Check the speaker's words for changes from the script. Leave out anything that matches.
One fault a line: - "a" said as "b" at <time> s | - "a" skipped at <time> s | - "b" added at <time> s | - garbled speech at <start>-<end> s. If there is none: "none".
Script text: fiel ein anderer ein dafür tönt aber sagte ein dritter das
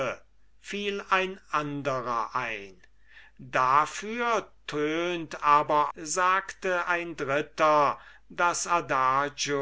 none